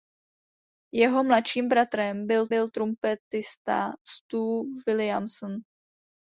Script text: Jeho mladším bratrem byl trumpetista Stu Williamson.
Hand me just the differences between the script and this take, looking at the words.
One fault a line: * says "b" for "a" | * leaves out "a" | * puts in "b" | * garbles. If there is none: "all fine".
* puts in "byl"